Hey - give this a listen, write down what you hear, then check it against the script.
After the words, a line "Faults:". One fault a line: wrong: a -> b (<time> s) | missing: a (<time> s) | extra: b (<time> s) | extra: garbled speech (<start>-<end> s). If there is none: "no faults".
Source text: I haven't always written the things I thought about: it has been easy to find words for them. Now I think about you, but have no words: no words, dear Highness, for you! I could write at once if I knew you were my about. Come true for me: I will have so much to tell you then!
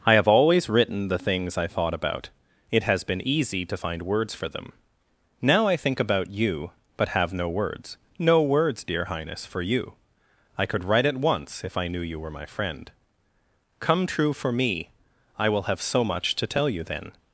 I have always written the things I thought about: it has been easy to find words for them. Now I think about you, but have no words: no words, dear Highness, for you! I could write at once if I knew you were my friend. Come true for me: I will have so much to tell you then!
Faults:
wrong: haven't -> have (0.1 s)
wrong: about -> friend (12.4 s)